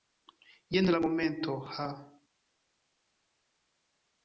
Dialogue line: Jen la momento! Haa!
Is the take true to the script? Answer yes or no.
yes